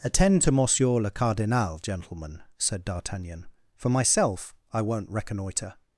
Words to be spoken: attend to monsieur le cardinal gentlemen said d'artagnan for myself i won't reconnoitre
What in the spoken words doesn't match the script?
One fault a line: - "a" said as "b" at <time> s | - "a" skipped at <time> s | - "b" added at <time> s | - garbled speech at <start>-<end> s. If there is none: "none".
none